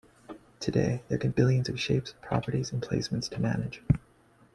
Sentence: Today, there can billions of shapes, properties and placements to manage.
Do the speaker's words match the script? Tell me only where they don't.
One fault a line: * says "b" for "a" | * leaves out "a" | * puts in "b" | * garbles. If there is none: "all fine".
all fine